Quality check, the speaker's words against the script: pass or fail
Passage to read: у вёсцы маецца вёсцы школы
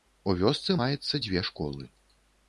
fail